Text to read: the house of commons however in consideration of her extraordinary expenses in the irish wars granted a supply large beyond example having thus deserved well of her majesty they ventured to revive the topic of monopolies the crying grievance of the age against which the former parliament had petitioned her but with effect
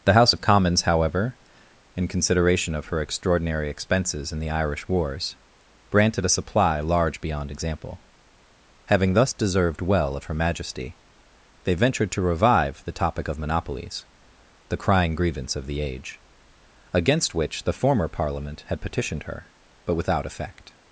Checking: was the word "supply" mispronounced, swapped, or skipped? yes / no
no